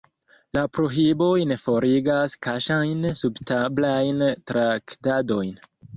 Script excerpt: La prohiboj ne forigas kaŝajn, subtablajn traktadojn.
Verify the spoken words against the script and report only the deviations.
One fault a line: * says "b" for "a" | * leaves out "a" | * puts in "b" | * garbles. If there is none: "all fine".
all fine